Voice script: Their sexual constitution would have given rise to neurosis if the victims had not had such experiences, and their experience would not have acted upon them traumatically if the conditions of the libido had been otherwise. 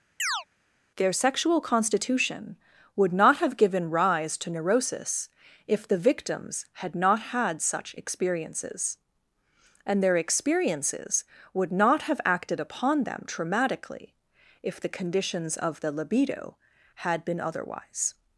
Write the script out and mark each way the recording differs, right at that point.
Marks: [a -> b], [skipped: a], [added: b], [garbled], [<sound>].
[chirp] Their sexual constitution would [added: not] have given rise to neurosis if the victims had not had such experiences, and their [experience -> experiences] would not have acted upon them traumatically if the conditions of the libido had been otherwise.